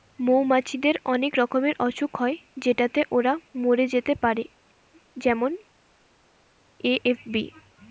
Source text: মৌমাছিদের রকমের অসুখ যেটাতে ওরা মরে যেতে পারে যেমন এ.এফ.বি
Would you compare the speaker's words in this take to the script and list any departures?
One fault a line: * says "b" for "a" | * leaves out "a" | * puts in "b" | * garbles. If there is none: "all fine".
* puts in "অনেক"
* puts in "হয়"